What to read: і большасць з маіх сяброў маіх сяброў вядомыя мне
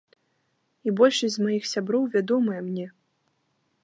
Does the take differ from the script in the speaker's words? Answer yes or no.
yes